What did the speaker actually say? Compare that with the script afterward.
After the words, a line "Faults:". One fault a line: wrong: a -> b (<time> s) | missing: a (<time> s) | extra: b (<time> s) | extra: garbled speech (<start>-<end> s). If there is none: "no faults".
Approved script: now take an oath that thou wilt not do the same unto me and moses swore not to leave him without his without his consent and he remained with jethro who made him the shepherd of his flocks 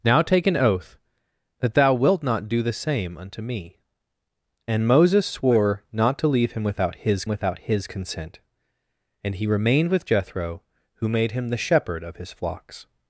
now take an oath that thou wilt not do the same unto me and moses swore not to leave him without his without his consent and he remained with jethro who made him the shepherd of his flocks
Faults:
no faults